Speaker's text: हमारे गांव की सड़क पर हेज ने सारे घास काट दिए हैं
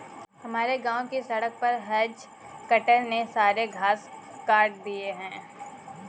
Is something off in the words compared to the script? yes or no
yes